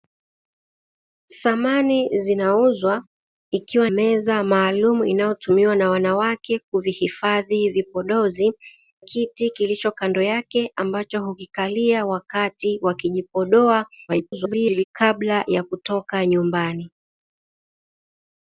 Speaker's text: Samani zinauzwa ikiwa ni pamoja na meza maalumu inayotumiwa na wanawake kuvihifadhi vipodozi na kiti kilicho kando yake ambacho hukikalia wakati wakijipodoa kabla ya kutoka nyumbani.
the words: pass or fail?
fail